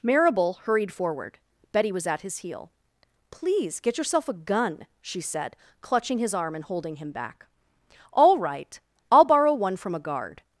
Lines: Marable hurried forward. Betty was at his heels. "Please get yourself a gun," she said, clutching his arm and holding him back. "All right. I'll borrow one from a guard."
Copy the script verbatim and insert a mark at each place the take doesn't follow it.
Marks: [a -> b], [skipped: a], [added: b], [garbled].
Marable hurried forward. Betty was at his [heels. -> heel] "Please get yourself a gun," she said, clutching his arm and holding him back. "All right. I'll borrow one from a guard."